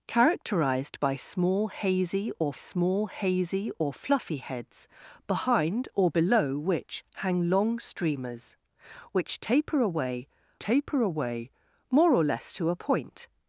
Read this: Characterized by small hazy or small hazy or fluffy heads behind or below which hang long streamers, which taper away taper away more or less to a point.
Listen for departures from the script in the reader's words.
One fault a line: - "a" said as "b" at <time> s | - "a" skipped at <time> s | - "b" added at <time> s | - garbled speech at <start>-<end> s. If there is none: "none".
none